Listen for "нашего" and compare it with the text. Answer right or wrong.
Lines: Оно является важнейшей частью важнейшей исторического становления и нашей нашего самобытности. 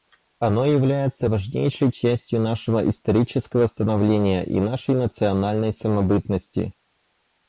wrong